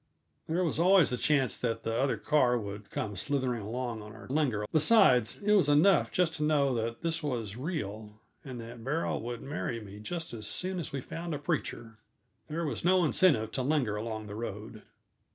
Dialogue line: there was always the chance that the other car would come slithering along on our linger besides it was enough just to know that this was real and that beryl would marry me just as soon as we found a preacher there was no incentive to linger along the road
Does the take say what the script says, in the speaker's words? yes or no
yes